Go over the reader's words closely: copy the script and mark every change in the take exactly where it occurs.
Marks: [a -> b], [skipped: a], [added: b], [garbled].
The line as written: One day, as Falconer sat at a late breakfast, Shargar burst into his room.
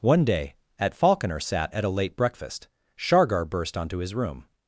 One day, [as -> at] Falconer sat at a late breakfast, Shargar burst [into -> onto] his room.